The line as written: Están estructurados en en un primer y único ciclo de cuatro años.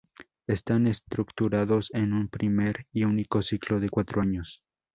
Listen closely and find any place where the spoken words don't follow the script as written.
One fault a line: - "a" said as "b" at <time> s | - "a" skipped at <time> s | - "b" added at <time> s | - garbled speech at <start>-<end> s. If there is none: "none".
- "en" skipped at 2.1 s